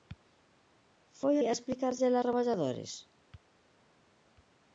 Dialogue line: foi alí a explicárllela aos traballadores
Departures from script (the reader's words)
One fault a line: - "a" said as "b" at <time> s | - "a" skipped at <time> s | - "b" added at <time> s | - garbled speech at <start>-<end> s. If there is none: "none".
- "alí" skipped at 1.4 s
- "aos" skipped at 2.2 s